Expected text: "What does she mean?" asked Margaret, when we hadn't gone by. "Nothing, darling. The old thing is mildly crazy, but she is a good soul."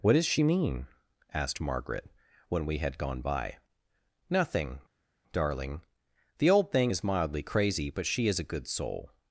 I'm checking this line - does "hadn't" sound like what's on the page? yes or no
no